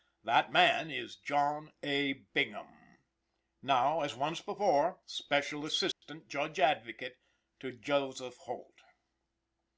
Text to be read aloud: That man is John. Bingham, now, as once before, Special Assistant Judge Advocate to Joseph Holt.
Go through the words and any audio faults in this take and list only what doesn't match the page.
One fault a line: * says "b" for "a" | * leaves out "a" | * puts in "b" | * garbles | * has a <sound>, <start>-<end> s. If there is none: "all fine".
* puts in "A"
* has a dropout, 5.9-6.0 s